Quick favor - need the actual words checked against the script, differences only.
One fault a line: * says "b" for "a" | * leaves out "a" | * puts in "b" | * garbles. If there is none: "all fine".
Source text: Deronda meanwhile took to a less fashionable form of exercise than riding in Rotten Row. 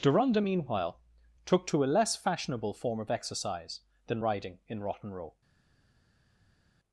all fine